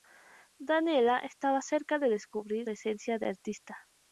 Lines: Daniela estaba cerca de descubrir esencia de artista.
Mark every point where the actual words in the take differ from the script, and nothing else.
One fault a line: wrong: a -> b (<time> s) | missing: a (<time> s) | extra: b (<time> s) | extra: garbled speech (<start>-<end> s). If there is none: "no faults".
no faults